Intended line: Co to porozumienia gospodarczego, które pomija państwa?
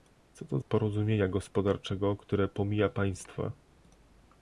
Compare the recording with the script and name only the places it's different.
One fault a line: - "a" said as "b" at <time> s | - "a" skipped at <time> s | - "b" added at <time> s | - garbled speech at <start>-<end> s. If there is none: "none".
none